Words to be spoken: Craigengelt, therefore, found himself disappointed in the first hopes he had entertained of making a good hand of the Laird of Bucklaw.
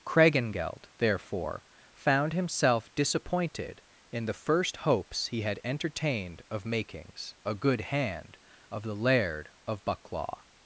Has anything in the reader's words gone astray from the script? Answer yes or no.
yes